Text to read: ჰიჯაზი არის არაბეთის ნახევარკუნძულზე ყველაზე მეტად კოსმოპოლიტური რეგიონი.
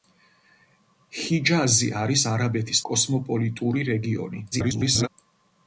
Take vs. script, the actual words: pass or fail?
fail